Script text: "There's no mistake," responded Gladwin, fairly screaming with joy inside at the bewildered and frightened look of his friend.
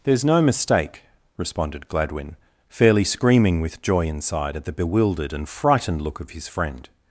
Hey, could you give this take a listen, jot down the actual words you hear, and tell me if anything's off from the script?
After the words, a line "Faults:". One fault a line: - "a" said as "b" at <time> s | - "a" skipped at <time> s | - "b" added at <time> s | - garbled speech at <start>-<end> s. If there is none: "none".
"There's no mistake," responded Gladwin, fairly screaming with joy inside at the bewildered and frightened look of his friend.
Faults:
none